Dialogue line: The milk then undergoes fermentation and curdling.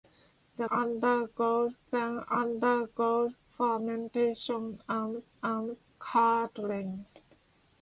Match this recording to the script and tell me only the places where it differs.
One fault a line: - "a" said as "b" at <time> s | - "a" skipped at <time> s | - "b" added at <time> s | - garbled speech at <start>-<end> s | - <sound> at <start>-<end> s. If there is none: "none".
- "milk" said as "undergoes" at 0.7 s
- "and" added at 5.4 s